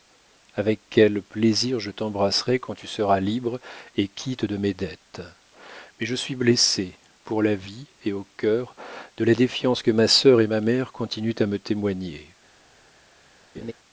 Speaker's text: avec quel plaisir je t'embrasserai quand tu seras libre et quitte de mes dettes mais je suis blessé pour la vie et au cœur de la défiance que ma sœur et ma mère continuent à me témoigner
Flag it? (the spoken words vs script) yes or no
no